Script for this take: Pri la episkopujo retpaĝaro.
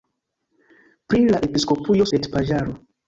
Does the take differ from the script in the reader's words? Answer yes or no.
no